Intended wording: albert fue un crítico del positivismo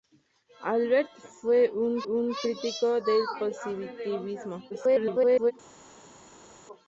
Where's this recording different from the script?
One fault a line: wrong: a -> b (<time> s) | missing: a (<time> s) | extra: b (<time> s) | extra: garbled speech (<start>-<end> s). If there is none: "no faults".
extra: un (2.0 s)
extra: garbled speech (4.7-5.5 s)